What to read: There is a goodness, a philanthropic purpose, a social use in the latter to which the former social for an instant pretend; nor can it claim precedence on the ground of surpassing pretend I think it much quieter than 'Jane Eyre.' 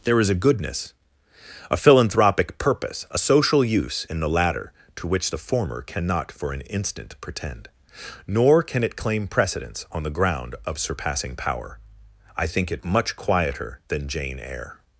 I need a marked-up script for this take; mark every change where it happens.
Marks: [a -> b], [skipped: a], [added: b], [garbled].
There is a goodness, a philanthropic purpose, a social use in the latter to which the former [social -> cannot] for an instant pretend; nor can it claim precedence on the ground of surpassing [pretend -> power] I think it much quieter than 'Jane Eyre.'